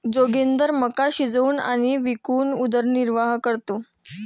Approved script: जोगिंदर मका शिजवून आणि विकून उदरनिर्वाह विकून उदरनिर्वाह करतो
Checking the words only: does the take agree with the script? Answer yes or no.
no